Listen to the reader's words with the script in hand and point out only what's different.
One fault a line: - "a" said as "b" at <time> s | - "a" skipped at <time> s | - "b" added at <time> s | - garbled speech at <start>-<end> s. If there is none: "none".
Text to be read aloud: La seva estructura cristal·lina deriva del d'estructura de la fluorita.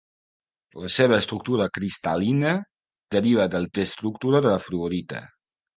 none